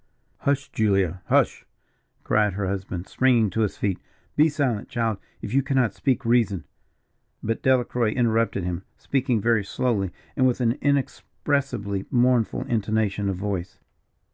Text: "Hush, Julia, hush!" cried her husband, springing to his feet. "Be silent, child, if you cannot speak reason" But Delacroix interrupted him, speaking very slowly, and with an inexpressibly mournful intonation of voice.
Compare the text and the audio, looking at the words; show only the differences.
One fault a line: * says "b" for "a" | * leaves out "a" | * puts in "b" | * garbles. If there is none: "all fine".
all fine